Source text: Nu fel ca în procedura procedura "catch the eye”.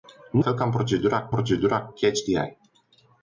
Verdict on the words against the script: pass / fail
pass